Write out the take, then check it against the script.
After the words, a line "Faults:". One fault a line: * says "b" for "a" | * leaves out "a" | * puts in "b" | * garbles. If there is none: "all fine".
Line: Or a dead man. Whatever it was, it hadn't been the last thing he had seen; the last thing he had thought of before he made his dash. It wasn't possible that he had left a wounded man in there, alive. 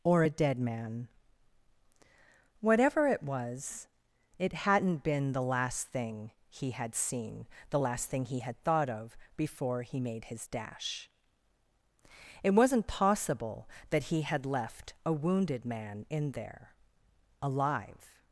Or a dead man. Whatever it was, it hadn't been the last thing he had seen; the last thing he had thought of before he made his dash. It wasn't possible that he had left a wounded man in there, alive.
Faults:
all fine